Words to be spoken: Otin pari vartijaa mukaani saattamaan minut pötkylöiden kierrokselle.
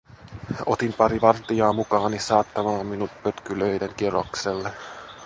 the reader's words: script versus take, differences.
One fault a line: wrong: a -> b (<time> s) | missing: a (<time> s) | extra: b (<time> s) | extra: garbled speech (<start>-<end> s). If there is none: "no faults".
no faults